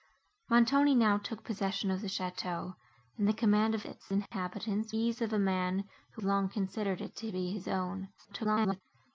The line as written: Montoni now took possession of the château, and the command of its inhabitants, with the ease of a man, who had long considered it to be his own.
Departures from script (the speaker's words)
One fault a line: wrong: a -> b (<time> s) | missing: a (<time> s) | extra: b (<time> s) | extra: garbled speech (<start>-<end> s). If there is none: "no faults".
missing: with the (5.0 s)
missing: had (6.2 s)
extra: garbled speech (8.2-8.8 s)